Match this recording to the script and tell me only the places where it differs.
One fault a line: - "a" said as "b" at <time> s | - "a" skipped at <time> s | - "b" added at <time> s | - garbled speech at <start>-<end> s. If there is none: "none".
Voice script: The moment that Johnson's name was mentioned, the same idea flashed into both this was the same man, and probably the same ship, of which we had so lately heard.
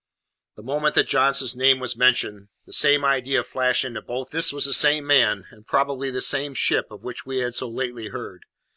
none